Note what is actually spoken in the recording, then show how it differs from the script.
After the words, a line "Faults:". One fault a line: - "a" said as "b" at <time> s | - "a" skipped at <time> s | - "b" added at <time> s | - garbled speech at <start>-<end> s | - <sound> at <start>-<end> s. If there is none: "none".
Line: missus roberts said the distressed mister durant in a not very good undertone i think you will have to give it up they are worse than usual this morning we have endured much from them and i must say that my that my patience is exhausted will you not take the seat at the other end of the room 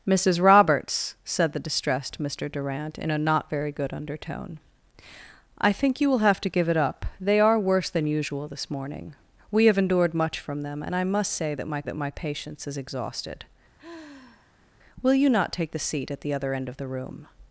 missus roberts said the distressed mister durant in a not very good undertone i think you will have to give it up they are worse than usual this morning we have endured much from them and i must say that my that my patience is exhausted will you not take the seat at the other end of the room
Faults:
- sigh at 13.8-14.7 s